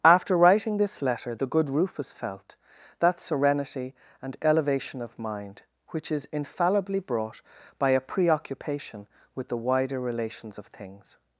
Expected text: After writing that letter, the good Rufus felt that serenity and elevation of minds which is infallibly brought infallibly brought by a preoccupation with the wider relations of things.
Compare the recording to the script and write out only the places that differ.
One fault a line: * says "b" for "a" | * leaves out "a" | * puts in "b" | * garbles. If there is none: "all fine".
* says "this" for "that"
* says "mind" for "minds"
* leaves out "infallibly brought"